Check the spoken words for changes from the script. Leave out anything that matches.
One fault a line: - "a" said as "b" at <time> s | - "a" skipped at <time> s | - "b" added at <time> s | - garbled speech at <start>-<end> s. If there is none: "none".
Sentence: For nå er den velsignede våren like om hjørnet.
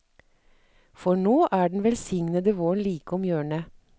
none